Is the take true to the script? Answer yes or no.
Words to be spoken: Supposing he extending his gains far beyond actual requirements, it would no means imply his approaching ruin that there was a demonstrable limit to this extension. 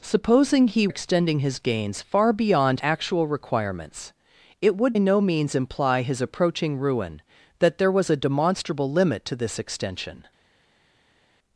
yes